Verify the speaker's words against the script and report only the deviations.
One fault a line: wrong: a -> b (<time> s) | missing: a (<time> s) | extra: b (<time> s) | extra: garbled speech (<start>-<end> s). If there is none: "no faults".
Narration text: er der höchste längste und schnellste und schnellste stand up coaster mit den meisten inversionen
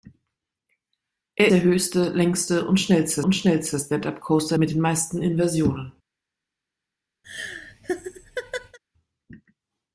no faults